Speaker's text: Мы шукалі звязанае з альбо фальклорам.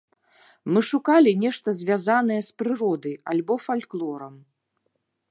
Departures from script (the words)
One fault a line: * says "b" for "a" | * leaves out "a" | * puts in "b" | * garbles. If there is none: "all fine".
* puts in "нешта"
* puts in "прыродай"